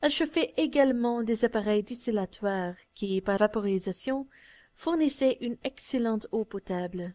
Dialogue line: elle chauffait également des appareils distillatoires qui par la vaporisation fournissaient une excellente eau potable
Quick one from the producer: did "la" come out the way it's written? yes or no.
no